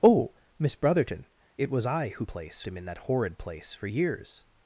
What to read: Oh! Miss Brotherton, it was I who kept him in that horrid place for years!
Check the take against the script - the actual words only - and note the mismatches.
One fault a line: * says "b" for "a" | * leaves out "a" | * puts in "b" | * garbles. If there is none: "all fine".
* says "place" for "kept"